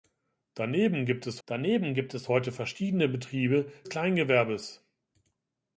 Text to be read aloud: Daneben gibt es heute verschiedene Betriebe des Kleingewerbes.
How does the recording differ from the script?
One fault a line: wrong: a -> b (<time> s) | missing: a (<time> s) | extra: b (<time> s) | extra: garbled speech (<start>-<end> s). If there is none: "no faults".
extra: daneben gibt es (1.5 s)
missing: des (3.7 s)